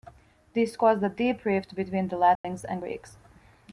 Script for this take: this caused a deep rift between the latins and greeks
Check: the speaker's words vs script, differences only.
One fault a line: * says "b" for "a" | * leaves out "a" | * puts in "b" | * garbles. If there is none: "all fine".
all fine